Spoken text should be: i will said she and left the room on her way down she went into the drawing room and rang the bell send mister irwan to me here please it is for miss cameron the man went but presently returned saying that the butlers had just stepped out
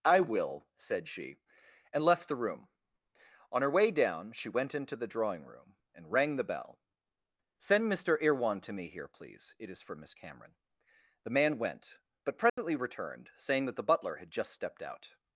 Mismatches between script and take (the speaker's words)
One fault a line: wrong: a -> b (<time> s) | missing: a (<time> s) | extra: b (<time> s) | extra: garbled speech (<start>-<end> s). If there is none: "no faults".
wrong: butlers -> butler (13.8 s)